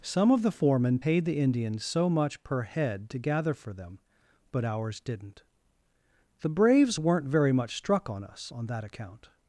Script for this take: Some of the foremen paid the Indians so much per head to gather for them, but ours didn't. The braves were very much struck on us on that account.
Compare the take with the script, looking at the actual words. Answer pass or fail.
fail